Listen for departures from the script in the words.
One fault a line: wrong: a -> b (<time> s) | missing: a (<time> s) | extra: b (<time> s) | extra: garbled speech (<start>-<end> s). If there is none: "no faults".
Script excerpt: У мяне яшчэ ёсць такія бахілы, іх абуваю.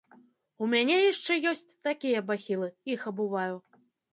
no faults